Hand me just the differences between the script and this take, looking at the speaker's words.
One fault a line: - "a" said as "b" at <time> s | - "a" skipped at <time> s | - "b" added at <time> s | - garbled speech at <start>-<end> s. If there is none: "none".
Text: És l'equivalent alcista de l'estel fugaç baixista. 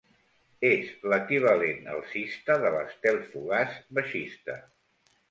none